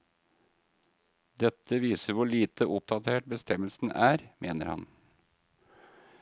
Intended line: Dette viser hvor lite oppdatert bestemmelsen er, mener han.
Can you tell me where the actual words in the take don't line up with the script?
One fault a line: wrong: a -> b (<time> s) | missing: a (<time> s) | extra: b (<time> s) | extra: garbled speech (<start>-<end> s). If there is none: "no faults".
no faults